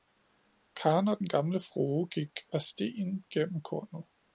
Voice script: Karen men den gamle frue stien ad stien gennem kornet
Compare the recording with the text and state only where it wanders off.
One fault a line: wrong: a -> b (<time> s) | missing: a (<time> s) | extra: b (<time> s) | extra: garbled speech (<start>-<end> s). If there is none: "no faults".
wrong: men -> og (1.1 s)
wrong: stien -> gik (2.1 s)